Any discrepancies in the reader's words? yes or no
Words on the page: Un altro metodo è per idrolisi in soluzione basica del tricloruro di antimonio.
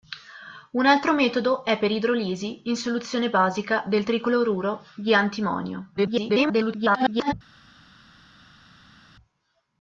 yes